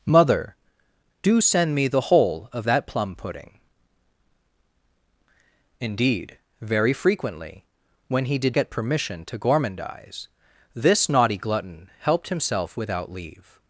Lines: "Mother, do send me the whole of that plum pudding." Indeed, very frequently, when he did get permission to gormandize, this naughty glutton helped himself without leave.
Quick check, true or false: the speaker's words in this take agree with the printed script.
true